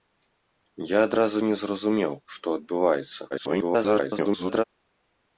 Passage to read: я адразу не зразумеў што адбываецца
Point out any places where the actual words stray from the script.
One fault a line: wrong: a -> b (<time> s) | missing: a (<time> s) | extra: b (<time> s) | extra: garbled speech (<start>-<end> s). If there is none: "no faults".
extra: garbled speech (3.3-4.6 s)